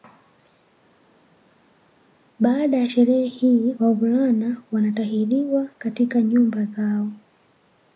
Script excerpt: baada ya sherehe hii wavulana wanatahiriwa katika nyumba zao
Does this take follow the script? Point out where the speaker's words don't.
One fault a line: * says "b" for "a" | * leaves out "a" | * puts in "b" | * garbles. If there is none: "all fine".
all fine